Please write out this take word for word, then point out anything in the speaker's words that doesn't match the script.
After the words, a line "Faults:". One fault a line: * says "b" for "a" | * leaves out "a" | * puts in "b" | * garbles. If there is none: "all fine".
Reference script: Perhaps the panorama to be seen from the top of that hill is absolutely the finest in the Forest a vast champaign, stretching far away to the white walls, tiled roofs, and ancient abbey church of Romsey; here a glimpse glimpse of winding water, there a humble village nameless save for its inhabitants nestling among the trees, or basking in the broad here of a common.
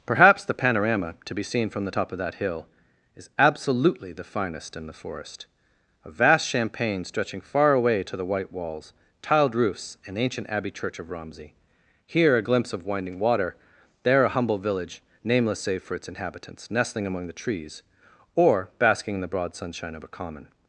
Perhaps the panorama to be seen from the top of that hill is absolutely the finest in the Forest a vast champaign, stretching far away to the white walls, tiled roofs, and ancient abbey church of Romsey; here a glimpse of winding water, there a humble village nameless save for its inhabitants nestling among the trees, or basking in the broad sunshine of a common.
Faults:
* leaves out "glimpse"
* says "sunshine" for "here"